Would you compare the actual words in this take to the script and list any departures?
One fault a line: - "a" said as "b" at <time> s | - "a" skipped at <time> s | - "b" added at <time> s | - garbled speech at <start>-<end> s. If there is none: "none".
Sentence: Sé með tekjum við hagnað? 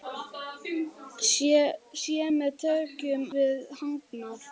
none